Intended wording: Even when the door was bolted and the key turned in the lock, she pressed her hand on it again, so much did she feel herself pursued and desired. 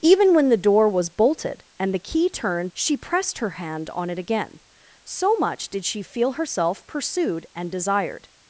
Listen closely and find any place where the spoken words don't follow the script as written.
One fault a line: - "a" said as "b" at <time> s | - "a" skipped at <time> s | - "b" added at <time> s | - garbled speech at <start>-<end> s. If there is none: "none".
- "in the lock" skipped at 2.7 s